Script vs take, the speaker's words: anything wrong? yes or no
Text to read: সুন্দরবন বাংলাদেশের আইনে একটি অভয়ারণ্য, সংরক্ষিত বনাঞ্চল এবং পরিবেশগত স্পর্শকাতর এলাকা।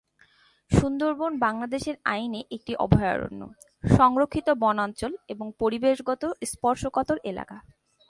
no